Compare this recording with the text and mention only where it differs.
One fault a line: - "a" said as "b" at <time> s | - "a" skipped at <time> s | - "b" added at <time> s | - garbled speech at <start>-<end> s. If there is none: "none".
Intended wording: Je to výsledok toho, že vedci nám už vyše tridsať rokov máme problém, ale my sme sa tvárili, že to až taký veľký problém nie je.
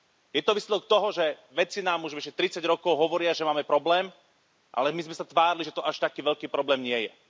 - "hovoria že" added at 2.9 s